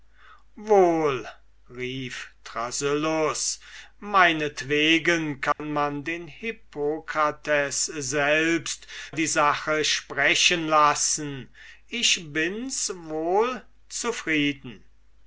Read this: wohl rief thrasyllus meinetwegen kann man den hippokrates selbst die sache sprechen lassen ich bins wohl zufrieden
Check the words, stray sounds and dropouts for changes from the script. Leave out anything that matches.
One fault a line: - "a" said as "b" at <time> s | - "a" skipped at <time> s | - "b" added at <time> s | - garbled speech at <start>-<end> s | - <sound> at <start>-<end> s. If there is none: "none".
- dropout at 5.5-5.6 s